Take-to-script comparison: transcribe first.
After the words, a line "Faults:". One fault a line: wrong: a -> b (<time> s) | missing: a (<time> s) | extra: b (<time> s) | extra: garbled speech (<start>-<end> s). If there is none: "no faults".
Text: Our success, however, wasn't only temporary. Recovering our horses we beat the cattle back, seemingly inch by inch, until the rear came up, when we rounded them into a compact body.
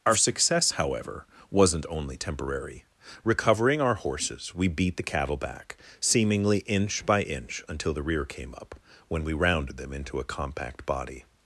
Our success, however, wasn't only temporary. Recovering our horses we beat the cattle back, seemingly inch by inch, until the rear came up, when we rounded them into a compact body.
Faults:
no faults